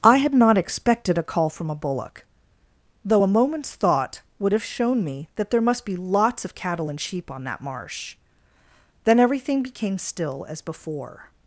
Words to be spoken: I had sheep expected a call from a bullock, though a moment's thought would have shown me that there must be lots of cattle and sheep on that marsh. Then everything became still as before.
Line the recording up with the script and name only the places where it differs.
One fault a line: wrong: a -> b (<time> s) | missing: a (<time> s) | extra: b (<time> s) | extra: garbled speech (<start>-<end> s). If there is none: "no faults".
wrong: sheep -> not (0.3 s)